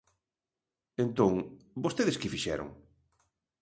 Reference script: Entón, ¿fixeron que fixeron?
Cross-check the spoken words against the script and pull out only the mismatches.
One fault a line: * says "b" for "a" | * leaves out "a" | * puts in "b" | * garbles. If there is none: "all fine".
* says "vostedes" for "fixeron"